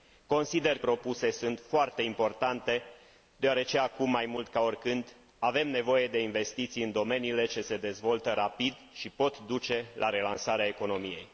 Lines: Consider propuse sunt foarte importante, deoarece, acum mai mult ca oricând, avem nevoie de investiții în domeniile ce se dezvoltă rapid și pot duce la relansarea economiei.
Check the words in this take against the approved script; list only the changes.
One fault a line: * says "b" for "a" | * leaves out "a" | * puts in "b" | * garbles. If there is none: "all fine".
all fine